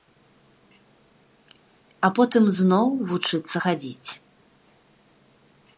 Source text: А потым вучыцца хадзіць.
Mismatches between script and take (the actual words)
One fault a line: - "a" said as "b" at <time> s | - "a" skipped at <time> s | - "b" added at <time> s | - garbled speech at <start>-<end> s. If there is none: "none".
- "зноў" added at 2.6 s